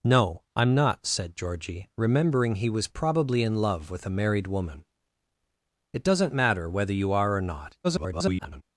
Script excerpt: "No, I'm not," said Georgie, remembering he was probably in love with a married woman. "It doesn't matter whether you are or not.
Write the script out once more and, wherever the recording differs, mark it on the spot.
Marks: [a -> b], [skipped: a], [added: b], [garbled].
"No, I'm not," said Georgie, remembering he was probably in love with a married woman. "It doesn't matter whether you are or not. [garbled]